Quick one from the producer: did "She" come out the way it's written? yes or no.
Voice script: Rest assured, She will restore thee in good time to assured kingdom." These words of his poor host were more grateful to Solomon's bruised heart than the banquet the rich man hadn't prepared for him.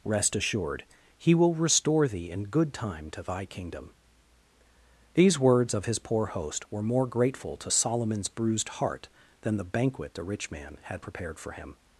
no